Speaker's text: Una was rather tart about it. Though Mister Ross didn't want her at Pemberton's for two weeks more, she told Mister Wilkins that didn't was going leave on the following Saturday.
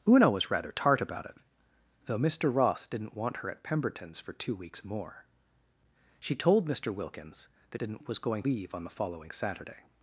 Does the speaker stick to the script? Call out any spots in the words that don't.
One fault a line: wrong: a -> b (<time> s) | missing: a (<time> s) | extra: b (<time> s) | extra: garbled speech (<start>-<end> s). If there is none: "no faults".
no faults